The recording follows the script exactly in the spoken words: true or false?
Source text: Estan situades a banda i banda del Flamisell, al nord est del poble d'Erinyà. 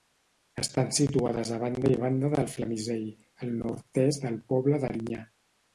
true